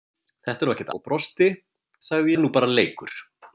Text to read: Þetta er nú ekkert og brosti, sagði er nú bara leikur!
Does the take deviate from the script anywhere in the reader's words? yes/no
no